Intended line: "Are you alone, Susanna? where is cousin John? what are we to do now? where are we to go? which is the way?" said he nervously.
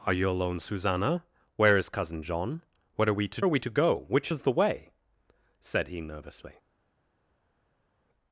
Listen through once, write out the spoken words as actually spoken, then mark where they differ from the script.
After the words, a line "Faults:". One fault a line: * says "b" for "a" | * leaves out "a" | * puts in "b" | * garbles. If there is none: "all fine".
"Are you alone, Susanna? where is cousin John? what are we to are we to go? which is the way?" said he nervously.
Faults:
* leaves out "do now where"